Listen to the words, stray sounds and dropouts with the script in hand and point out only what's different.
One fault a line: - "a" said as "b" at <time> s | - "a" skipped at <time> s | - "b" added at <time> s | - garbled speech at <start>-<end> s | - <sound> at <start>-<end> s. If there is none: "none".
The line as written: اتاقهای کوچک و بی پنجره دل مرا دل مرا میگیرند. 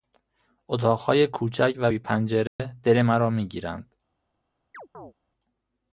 - dropout at 2.5-2.6 s
- "دل مرا" skipped at 3.3 s
- chirp at 4.7-5.1 s